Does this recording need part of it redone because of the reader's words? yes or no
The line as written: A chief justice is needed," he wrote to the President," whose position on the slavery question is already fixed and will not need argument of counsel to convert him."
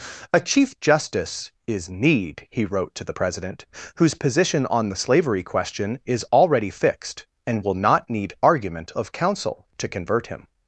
yes